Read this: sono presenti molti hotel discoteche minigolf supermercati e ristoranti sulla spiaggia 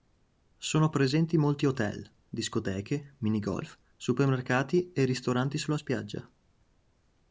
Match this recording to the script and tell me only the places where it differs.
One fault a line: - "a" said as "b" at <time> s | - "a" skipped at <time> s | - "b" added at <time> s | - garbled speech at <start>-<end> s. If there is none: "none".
none